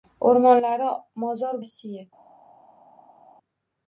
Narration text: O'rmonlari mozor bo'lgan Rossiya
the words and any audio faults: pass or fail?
fail